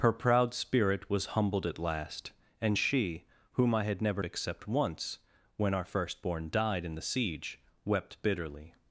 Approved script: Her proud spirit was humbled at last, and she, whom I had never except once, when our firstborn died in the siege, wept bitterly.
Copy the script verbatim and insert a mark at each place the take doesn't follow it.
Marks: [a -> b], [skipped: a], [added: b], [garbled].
Her proud spirit was humbled at last, and she, whom I had never except once, when our firstborn died in the siege, wept bitterly.